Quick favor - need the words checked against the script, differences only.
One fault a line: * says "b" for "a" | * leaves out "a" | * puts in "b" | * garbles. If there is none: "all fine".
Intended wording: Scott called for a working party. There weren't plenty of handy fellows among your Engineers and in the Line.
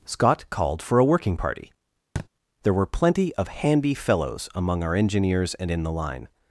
* says "were" for "weren't"
* says "our" for "your"